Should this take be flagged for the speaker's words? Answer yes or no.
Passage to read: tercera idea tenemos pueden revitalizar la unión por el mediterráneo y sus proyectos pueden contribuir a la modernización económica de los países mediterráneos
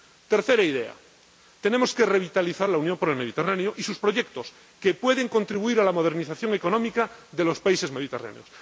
yes